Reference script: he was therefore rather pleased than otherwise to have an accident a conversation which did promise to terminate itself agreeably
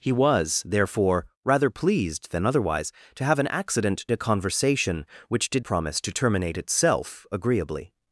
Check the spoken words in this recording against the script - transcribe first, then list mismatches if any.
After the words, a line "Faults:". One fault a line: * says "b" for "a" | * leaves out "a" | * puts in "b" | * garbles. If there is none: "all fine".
he was therefore rather pleased than otherwise to have an accident a conversation which did promise to terminate itself agreeably
Faults:
all fine